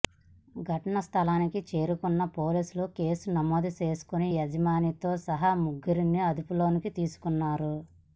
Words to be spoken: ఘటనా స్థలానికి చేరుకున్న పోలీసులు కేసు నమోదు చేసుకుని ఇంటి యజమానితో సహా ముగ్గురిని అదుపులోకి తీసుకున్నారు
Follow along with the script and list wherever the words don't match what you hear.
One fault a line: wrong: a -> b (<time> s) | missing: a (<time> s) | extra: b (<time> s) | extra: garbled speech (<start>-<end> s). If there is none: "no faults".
missing: ఇంటి (4.3 s)